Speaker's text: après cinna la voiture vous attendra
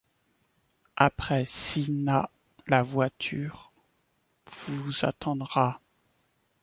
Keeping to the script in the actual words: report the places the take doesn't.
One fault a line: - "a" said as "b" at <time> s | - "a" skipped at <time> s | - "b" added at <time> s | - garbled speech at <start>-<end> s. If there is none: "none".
none